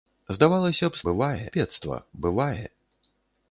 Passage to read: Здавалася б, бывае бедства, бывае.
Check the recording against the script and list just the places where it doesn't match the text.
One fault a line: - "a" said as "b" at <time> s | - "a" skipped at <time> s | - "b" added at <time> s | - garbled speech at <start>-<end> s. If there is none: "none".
none